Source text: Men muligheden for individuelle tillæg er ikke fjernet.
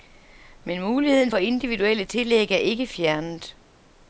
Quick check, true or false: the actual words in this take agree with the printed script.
true